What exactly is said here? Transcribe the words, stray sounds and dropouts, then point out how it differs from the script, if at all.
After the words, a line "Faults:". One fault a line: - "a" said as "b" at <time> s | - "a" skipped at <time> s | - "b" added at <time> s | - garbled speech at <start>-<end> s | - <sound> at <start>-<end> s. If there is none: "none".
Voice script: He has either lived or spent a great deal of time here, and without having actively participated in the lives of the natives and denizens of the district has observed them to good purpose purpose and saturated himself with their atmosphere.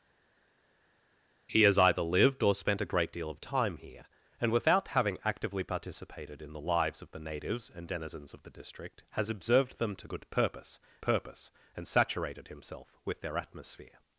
He has either lived or spent a great deal of time here, and without having actively participated in the lives of the natives and denizens of the district has observed them to good purpose purpose and saturated himself with their atmosphere.
Faults:
none